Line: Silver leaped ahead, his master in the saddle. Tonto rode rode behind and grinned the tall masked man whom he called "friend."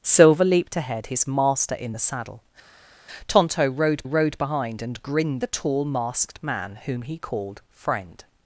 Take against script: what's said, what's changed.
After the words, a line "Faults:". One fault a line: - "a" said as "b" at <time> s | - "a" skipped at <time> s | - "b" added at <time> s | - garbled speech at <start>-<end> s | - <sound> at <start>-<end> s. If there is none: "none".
Silver leaped ahead, his master in the saddle. Tonto rode rode behind and grinned the tall masked man whom he called "friend."
Faults:
none